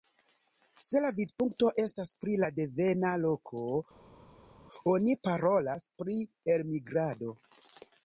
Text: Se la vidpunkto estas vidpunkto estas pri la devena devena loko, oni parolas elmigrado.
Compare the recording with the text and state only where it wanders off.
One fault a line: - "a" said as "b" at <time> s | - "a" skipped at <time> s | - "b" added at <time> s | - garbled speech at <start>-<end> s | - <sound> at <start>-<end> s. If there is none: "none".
- "vidpunkto estas" skipped at 2.1 s
- "devena" skipped at 3.1 s
- "pri" added at 6.0 s